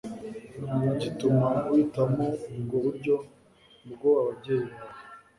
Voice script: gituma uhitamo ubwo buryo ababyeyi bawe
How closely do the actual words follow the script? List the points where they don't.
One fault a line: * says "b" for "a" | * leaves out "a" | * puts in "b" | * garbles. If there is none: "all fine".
* puts in "bwo"